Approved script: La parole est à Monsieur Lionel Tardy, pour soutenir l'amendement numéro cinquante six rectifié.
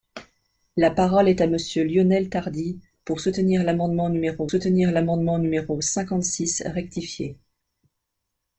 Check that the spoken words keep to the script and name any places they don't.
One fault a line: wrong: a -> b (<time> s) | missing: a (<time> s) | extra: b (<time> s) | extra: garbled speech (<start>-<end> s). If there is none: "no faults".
extra: soutenir l'amendement numéro (4.5 s)